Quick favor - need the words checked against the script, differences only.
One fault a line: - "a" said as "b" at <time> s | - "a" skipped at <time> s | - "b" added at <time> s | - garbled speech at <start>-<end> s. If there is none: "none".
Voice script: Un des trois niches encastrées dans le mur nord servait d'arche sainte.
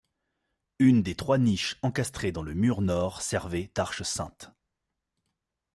- "Un" said as "Une" at 0.8 s